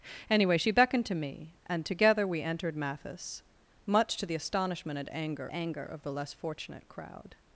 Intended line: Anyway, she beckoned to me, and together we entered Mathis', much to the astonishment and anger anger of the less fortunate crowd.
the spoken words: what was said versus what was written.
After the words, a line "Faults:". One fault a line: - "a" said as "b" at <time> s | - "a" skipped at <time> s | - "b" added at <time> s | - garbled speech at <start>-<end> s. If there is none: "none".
Anyway, she beckoned to me, and together we entered Mathis', much to the astonishment and anger anger of the less fortunate crowd.
Faults:
none